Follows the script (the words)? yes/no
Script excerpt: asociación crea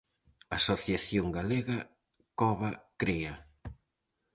no